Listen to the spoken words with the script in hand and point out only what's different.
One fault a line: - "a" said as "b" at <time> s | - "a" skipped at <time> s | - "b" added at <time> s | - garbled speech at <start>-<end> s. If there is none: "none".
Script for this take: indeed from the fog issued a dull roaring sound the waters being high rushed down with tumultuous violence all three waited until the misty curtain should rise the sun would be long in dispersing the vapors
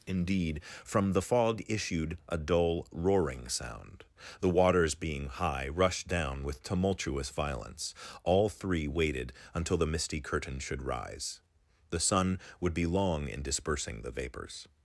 none